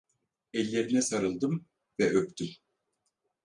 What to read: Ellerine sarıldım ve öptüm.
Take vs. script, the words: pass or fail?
pass